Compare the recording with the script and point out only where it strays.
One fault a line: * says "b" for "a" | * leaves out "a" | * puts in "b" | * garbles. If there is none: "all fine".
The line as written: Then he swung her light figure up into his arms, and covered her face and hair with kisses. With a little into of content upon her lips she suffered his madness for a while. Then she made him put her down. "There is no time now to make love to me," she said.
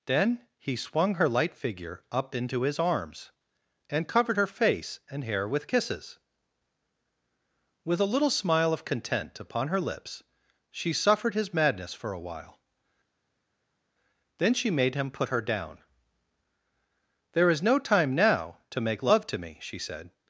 * says "smile" for "into"